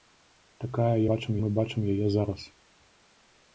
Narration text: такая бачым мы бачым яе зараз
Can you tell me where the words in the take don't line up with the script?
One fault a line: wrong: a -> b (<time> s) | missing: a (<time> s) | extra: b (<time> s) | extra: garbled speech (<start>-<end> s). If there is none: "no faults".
no faults